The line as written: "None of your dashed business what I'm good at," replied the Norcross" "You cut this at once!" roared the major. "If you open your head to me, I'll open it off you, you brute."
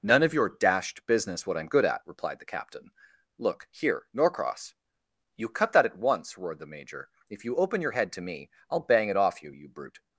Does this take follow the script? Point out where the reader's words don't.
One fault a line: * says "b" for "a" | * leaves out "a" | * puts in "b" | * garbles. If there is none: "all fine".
* puts in "captain Look here"
* says "that" for "this"
* says "bang" for "open"